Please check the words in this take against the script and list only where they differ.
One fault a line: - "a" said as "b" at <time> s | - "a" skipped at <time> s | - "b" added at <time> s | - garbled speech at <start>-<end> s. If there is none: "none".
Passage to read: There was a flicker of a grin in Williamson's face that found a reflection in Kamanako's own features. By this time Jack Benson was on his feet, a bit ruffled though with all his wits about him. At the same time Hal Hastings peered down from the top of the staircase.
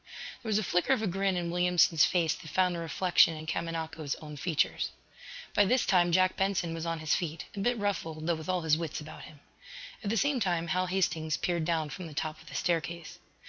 none